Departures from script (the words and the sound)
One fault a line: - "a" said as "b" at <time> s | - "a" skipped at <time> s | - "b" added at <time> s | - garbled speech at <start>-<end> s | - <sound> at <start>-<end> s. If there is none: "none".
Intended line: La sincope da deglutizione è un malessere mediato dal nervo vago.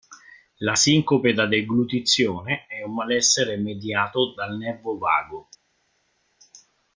none